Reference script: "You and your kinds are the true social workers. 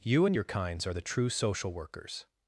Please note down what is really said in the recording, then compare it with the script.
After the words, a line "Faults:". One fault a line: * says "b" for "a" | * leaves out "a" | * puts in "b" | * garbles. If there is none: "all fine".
"You and your kinds are the true social workers.
Faults:
all fine